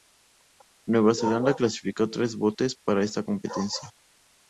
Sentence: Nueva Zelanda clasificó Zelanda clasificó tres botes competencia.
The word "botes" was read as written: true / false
false